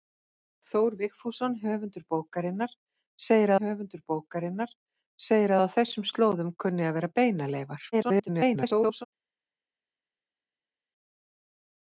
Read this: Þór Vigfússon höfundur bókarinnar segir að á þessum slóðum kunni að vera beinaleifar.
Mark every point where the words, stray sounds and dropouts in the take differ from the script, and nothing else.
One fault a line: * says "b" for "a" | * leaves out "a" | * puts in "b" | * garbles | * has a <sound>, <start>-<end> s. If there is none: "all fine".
* puts in "höfundur bókarinnar segir"
* garbles